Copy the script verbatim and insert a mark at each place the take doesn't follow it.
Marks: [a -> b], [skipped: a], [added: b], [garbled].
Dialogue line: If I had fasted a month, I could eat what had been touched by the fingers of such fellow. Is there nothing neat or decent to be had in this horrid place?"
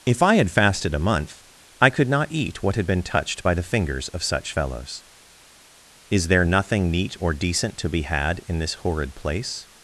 If I had fasted a month, I could [added: not] eat what had been touched by the fingers of such [fellow. -> fellows] Is there nothing neat or decent to be had in this horrid place?"